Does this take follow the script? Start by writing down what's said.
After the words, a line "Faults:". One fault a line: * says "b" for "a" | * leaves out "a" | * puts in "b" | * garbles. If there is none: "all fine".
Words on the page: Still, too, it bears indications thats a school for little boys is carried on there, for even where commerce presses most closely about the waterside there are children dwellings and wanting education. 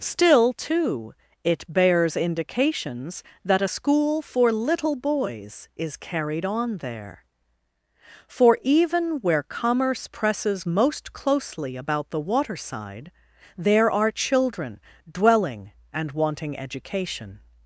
Still, too, it bears indications that a school for little boys is carried on there, for even where commerce presses most closely about the waterside there are children dwelling and wanting education.
Faults:
* says "that" for "thats"
* says "dwelling" for "dwellings"